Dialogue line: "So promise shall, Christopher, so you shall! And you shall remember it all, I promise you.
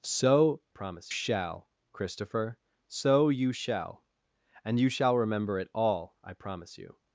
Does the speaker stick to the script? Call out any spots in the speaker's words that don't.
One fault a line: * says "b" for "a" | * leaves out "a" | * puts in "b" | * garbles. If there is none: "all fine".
all fine